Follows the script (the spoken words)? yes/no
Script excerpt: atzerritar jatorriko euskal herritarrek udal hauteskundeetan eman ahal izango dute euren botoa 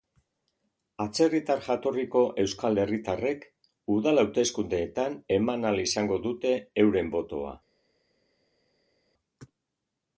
yes